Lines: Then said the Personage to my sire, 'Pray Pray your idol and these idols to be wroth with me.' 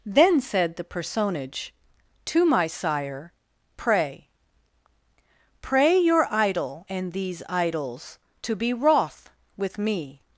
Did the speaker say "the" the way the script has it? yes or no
yes